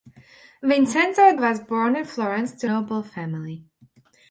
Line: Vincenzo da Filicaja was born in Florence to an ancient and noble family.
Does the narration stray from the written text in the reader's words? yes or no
yes